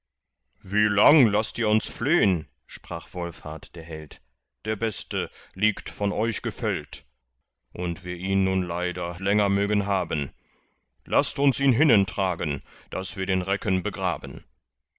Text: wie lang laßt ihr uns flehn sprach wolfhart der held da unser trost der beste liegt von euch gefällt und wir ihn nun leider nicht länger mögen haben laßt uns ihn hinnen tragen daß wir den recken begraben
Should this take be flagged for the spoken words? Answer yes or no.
yes